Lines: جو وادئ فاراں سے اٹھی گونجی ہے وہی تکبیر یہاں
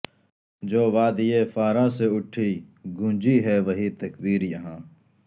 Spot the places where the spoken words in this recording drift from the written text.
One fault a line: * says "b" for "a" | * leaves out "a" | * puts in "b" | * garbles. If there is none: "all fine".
all fine